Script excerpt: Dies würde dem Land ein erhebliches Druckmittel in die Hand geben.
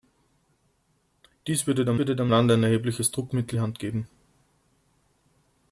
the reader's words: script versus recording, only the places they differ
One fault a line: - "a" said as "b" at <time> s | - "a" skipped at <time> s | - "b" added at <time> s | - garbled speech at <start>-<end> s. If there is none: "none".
- "würde dem" added at 2.0 s
- "in" skipped at 3.6 s